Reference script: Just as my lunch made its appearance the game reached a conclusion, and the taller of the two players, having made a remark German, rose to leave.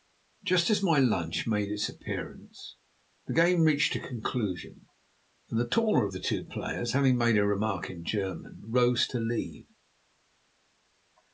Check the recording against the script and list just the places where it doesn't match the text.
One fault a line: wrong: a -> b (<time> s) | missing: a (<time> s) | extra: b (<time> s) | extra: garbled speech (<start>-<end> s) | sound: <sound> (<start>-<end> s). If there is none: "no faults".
extra: in (7.9 s)